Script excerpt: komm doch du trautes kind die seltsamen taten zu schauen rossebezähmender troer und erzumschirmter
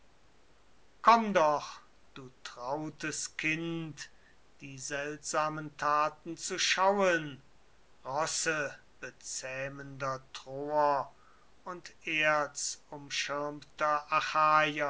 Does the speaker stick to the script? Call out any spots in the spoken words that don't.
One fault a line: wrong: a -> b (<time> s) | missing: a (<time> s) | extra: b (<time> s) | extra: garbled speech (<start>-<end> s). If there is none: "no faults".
no faults